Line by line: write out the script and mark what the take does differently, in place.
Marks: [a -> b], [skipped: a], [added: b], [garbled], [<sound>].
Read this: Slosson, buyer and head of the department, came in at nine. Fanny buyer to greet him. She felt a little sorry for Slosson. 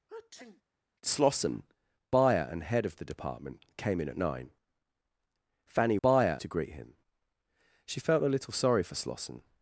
[sneeze] Slosson, buyer and head of the department, came in at nine. Fanny buyer to greet him. She felt a little sorry for Slosson.